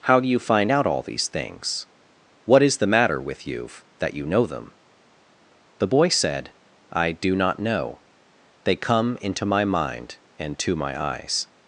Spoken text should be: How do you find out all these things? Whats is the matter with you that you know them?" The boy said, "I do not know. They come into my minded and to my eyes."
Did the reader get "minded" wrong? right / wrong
wrong